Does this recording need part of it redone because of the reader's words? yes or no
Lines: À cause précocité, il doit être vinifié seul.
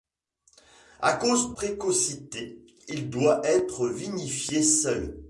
no